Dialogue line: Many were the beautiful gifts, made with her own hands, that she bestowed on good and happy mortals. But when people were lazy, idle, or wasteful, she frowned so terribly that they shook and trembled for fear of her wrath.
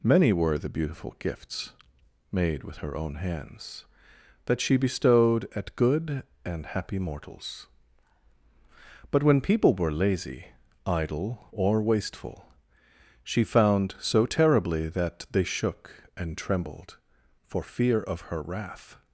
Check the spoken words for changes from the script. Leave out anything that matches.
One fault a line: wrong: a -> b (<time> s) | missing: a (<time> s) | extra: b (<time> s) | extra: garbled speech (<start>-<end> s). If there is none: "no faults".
wrong: on -> at (5.5 s)
wrong: frowned -> found (13.4 s)